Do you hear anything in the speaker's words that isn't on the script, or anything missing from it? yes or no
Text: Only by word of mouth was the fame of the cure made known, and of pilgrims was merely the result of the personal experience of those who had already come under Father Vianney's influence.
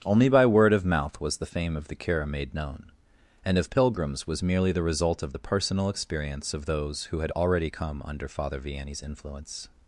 no